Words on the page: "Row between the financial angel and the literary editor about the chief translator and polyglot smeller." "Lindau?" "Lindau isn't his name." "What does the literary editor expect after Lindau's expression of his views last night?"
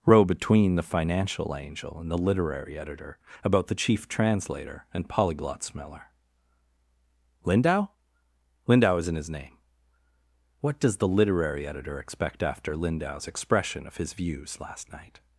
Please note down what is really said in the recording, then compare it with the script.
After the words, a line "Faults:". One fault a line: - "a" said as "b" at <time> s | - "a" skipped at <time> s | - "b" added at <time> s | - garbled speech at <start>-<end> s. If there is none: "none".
"Row between the financial angel and the literary editor about the chief translator and polyglot smeller." "Lindau?" "Lindau isn't his name." "What does the literary editor expect after Lindau's expression of his views last night?"
Faults:
none